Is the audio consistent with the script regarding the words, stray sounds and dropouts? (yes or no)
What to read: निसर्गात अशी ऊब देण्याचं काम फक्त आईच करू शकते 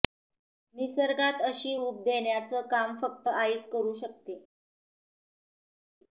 yes